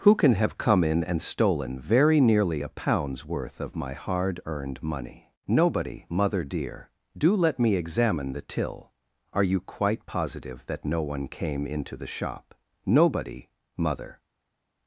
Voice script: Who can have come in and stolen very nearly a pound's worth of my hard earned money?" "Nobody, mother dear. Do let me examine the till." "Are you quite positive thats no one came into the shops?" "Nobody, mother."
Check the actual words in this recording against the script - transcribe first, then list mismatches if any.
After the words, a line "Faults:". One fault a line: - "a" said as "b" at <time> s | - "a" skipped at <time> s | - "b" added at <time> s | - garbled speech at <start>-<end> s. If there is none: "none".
Who can have come in and stolen very nearly a pound's worth of my hard earned money?" "Nobody, mother dear. Do let me examine the till." "Are you quite positive that no one came into the shop?" "Nobody, mother."
Faults:
- "thats" said as "that" at 10.7 s
- "shops" said as "shop" at 12.1 s